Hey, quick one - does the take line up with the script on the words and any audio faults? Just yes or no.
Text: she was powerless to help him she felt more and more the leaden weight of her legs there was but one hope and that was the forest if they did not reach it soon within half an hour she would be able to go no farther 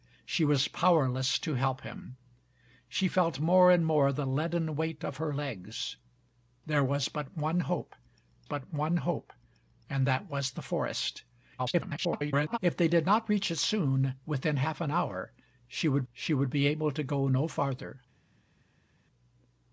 no